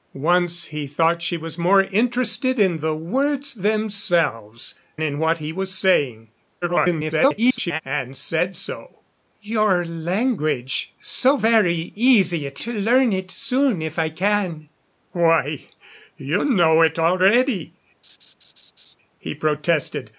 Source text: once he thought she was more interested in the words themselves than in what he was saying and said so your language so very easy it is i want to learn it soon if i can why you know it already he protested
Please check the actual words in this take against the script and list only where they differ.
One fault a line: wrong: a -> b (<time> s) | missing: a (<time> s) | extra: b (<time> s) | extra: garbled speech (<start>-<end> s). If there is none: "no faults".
missing: than (4.7 s)
extra: garbled speech (6.6-7.8 s)
missing: is i want (12.6 s)